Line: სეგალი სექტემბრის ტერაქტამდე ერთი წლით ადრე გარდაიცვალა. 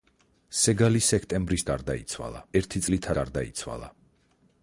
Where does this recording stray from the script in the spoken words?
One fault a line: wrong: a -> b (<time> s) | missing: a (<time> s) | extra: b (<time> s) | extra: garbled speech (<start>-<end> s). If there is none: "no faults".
wrong: ტერაქტამდე -> გარდაიცვალა (1.7 s)
missing: ადრე (3.1 s)